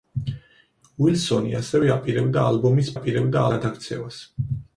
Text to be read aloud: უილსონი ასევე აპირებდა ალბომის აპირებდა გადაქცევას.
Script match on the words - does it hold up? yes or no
yes